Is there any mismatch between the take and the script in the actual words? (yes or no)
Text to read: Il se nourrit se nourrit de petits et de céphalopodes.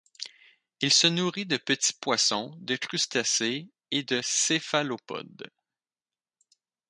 yes